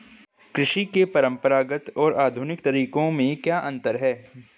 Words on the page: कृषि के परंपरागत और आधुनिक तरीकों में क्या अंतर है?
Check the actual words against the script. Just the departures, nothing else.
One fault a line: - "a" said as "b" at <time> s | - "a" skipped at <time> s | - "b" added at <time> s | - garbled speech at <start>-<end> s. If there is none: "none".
none